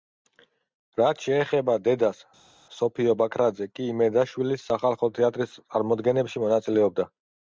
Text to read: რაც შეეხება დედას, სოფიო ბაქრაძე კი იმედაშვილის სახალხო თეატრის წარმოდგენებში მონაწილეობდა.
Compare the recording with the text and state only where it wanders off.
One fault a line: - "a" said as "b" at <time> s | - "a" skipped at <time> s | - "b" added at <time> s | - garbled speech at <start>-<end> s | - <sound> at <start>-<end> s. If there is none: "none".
none